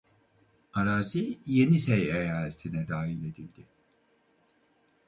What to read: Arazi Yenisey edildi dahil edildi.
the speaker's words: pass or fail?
fail